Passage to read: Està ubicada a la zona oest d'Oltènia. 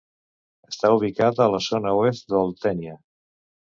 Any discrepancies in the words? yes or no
no